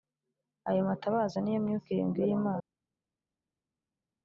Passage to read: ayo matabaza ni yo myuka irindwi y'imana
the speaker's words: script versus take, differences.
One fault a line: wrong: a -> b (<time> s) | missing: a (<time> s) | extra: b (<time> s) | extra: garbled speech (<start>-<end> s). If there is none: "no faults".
no faults